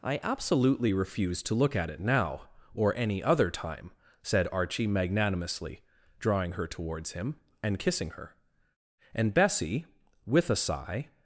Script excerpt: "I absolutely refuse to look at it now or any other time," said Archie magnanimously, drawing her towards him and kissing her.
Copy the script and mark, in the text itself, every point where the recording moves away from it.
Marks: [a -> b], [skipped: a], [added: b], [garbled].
"I absolutely refuse to look at it now or any other time," said Archie magnanimously, drawing her towards him and kissing her. [added: And Bessie with a sigh]